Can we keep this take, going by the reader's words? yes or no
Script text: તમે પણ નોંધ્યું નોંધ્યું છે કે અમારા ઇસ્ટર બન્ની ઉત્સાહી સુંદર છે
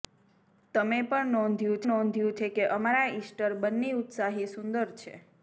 yes